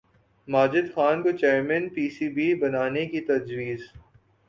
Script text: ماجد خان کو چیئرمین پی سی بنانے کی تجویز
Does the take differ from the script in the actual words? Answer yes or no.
yes